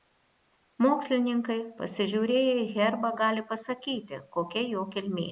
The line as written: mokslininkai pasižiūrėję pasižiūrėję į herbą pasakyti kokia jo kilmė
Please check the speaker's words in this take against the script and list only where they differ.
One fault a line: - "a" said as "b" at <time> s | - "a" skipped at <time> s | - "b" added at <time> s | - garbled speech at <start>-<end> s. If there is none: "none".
- "pasižiūrėję" skipped at 2.5 s
- "gali" added at 3.2 s